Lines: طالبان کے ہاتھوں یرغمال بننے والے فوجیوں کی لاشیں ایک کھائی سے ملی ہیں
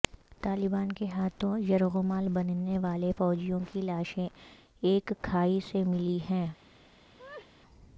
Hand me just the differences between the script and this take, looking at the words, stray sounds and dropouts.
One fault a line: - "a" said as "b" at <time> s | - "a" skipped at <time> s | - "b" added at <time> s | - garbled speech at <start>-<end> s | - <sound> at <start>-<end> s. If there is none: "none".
- laugh at 7.2-7.5 s